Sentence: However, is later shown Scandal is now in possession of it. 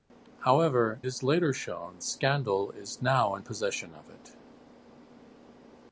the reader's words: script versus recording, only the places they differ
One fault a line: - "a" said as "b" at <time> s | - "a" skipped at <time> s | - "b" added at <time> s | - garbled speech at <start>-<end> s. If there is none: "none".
none